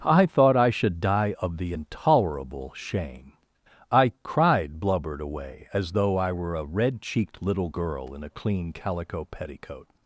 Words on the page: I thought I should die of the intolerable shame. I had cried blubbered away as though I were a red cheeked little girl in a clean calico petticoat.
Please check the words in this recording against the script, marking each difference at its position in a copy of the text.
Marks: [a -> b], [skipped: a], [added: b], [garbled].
I thought I should die of the intolerable shame. I [skipped: had] cried blubbered away as though I were a red cheeked little girl in a clean calico petticoat.